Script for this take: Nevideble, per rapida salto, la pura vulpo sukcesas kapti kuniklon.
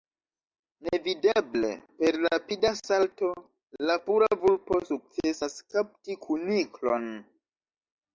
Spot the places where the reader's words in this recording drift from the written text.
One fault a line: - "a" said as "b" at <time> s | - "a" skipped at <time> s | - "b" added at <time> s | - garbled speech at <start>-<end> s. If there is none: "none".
none